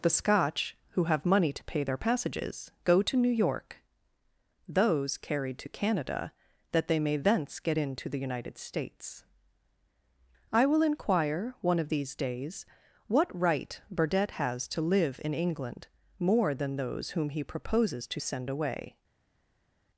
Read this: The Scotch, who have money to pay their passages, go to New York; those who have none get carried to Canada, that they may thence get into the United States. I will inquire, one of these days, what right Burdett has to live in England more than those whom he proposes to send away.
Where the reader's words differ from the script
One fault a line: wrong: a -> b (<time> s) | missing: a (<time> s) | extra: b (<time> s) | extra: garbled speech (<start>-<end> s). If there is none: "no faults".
missing: who have none get (5.2 s)